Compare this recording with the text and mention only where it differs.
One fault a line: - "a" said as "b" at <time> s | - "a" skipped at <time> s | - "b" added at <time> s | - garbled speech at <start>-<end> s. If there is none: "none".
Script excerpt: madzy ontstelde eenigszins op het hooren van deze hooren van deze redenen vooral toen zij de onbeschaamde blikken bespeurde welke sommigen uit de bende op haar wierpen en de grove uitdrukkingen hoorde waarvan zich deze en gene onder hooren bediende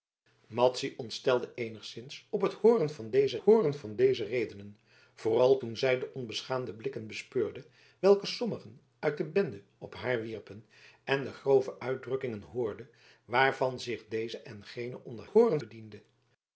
none